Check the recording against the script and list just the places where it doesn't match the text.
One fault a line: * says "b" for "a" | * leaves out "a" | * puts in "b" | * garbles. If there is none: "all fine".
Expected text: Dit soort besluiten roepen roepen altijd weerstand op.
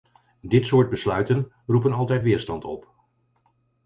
* leaves out "roepen"